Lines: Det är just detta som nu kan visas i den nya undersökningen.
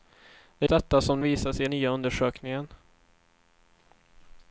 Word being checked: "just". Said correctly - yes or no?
no